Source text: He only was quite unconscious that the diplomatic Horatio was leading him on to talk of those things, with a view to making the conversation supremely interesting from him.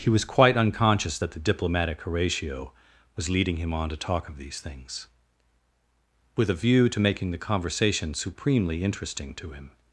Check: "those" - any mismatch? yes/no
yes